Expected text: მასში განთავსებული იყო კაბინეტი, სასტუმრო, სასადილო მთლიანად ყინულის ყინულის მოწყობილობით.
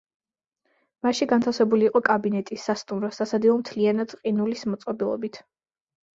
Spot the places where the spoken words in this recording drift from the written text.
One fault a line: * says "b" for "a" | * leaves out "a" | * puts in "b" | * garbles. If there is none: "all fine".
* leaves out "ყინულის"